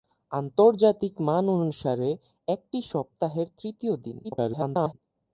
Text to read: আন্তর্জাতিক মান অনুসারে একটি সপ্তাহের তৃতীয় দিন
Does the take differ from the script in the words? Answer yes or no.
yes